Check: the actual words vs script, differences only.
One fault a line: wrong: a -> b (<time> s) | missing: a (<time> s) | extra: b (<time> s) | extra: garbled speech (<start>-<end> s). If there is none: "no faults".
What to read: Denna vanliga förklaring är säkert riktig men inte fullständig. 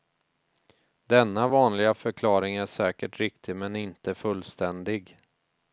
no faults